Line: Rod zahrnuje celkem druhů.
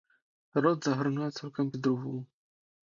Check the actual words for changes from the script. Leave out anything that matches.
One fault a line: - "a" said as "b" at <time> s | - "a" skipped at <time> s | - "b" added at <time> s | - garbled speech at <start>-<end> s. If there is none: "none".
none